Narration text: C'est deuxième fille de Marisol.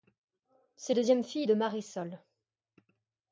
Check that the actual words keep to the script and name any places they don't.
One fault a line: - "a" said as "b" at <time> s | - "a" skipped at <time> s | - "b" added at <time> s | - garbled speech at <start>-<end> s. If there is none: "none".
none